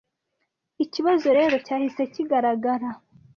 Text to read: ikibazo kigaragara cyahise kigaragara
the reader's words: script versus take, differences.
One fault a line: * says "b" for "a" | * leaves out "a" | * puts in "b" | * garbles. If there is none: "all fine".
* says "rero" for "kigaragara"